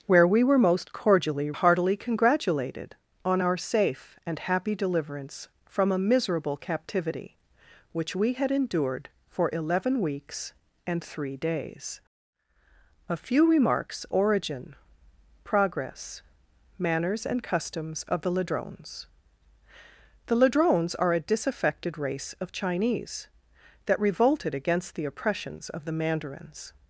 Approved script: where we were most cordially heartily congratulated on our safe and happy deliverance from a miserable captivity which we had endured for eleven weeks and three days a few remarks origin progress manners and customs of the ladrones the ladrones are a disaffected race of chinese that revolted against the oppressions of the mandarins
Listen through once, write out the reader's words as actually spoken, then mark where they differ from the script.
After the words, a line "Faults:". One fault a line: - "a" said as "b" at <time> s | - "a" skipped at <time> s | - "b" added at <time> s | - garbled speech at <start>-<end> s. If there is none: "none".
where we were most cordially heartily congratulated on our safe and happy deliverance from a miserable captivity which we had endured for eleven weeks and three days a few remarks origin progress manners and customs of the ladrones the ladrones are a disaffected race of chinese that revolted against the oppressions of the mandarins
Faults:
none